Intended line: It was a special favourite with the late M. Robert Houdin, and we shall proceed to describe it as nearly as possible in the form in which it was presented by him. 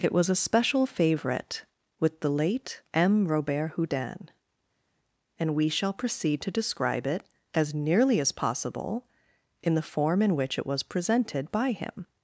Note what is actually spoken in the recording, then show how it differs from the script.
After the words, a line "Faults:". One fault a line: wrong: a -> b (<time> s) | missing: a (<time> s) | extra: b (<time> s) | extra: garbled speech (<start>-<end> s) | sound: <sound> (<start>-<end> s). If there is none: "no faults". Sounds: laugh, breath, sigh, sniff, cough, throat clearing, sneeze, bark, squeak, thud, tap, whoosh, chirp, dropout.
It was a special favourite with the late M. Robert Houdin, and we shall proceed to describe it as nearly as possible in the form in which it was presented by him.
Faults:
no faults